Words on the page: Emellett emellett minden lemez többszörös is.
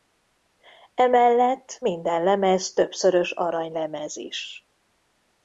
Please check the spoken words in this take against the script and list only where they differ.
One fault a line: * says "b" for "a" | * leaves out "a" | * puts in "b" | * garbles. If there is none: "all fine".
* leaves out "emellett"
* puts in "aranylemez"